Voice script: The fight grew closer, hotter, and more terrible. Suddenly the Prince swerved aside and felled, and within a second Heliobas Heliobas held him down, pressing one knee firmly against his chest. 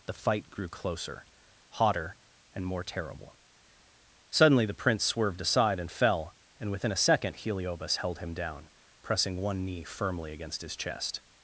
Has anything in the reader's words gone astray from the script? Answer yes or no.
yes